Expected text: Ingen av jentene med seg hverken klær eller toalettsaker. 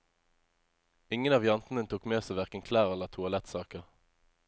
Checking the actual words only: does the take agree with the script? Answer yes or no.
no